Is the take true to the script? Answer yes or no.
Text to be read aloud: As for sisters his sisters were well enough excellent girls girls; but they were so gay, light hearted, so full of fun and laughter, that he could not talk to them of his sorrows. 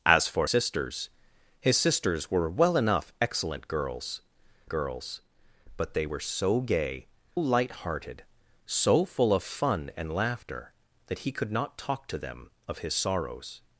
yes